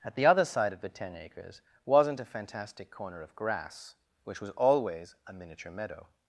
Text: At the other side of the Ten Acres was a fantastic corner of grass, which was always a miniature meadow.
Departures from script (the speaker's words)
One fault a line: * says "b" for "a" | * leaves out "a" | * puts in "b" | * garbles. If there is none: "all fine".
* says "wasn't" for "was"